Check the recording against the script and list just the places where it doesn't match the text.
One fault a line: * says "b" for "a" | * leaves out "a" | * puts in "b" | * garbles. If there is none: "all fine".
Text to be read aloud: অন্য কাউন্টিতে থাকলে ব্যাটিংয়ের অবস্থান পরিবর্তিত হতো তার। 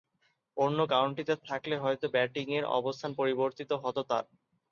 * puts in "হয়তো"